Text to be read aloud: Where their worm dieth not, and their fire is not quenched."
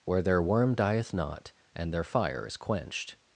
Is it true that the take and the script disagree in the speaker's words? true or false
true